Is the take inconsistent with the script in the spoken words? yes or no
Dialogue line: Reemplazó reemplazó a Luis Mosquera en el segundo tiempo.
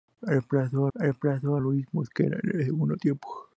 no